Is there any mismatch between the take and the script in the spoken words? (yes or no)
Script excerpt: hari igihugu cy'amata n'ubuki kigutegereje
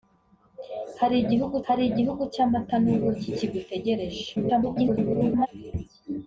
yes